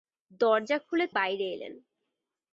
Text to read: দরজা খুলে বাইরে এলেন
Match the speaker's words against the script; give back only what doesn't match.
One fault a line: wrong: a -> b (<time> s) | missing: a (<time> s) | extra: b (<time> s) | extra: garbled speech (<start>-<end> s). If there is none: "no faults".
no faults